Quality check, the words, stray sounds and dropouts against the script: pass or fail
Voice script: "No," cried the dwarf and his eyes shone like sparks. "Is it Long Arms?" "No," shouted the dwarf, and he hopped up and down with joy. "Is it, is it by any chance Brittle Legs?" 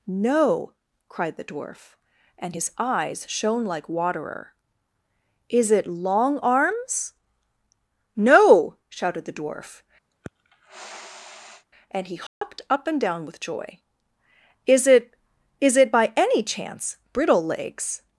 fail